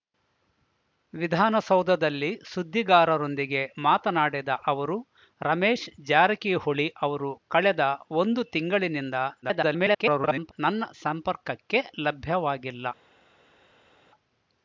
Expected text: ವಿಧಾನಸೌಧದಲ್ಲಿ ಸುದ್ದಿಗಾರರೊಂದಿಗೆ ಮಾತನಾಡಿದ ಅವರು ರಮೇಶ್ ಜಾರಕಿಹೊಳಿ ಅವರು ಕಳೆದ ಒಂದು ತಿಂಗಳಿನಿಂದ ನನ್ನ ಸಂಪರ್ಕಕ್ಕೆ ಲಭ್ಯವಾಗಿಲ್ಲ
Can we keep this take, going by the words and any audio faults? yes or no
no